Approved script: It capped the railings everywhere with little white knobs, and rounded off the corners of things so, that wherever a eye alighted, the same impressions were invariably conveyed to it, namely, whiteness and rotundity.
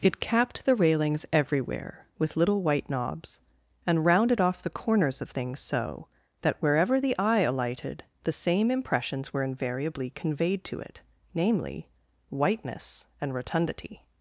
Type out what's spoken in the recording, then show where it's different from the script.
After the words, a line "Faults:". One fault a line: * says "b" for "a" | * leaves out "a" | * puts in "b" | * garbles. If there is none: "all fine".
It capped the railings everywhere with little white knobs, and rounded off the corners of things so, that wherever the eye alighted, the same impressions were invariably conveyed to it, namely, whiteness and rotundity.
Faults:
* says "the" for "a"